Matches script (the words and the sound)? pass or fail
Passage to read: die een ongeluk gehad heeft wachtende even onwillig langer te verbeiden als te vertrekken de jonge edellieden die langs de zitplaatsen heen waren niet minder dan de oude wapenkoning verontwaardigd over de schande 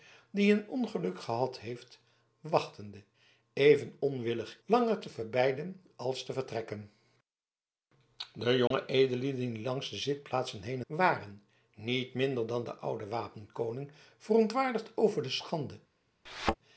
fail